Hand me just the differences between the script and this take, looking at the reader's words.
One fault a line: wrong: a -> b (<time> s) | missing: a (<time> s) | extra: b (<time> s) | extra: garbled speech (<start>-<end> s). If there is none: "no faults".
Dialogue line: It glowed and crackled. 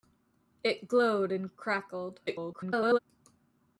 extra: garbled speech (2.3-3.0 s)